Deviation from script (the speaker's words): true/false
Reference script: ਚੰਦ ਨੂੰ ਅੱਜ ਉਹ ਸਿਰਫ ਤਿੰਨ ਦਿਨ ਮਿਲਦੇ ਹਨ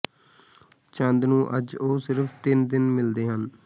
false